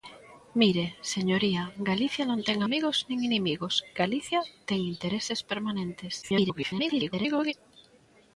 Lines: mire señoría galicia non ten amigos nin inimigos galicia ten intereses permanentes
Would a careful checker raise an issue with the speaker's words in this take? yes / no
yes